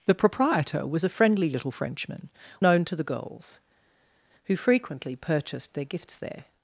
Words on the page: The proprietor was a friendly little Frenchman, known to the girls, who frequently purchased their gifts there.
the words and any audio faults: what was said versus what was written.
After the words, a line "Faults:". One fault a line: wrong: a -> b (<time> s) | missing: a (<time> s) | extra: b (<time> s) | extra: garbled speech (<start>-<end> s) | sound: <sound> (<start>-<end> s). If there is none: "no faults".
The proprietor was a friendly little Frenchman, known to the girls, who frequently purchased their gifts there.
Faults:
no faults